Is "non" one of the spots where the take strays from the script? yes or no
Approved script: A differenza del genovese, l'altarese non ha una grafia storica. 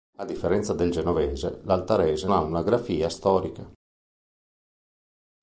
yes